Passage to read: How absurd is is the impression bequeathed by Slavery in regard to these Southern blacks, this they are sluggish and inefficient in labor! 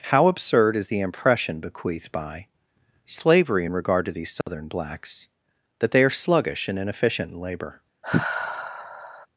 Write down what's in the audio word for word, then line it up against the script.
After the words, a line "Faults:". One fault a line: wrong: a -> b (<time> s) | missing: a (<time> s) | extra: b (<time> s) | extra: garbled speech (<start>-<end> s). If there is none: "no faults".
How absurd is the impression bequeathed by Slavery in regard to these Southern blacks, that they are sluggish and inefficient in labor!
Faults:
missing: is (0.9 s)
wrong: this -> that (5.8 s)